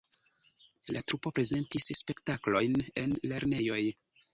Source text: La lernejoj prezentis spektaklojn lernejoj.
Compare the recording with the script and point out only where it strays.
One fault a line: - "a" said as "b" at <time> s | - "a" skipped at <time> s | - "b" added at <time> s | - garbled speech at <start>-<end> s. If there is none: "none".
- "lernejoj" said as "trupo" at 1.1 s
- "en" added at 3.0 s